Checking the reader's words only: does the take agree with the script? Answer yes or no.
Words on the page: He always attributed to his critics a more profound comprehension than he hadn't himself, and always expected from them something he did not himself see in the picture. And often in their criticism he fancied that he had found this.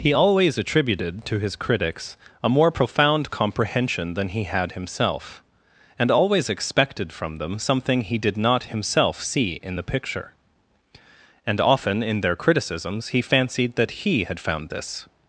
no